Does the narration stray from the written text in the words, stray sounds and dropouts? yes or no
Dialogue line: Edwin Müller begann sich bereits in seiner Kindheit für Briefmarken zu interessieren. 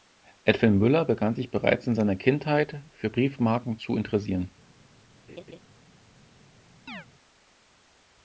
yes